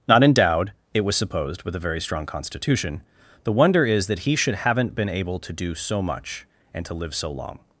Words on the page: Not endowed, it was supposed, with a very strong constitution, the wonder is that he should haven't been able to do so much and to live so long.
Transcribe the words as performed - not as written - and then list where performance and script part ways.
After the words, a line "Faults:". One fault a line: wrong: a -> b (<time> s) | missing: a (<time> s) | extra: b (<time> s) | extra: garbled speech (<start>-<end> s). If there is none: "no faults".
Not endowed, it was supposed, with a very strong constitution, the wonder is that he should haven't been able to do so much and to live so long.
Faults:
no faults